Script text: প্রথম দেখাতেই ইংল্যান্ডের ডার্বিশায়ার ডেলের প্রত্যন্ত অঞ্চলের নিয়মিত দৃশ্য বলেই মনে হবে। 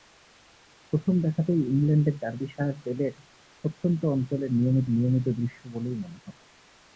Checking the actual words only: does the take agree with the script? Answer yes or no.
no